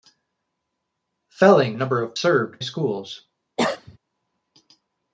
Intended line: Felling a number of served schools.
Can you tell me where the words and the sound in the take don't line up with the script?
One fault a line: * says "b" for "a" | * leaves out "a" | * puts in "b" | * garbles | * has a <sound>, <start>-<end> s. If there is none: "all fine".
* has a cough, 3.6-4.0 s